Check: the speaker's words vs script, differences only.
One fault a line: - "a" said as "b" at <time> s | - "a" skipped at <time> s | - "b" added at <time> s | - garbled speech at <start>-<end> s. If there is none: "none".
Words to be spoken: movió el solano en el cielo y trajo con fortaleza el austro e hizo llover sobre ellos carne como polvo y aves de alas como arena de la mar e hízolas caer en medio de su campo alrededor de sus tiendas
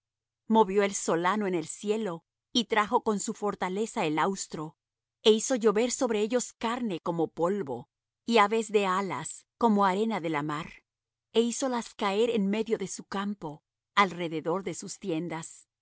- "su" added at 3.2 s